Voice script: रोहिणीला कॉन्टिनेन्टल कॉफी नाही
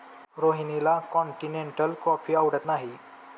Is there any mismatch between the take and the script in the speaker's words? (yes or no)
yes